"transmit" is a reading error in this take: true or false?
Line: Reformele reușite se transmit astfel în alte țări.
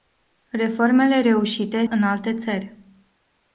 true